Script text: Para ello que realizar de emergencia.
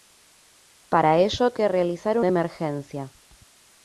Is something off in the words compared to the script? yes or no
no